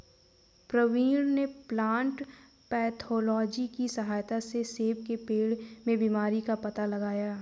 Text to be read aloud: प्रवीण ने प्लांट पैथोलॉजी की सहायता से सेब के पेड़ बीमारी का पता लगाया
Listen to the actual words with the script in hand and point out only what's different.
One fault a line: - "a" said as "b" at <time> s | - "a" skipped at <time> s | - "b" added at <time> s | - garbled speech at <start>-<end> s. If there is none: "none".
- "में" added at 5.9 s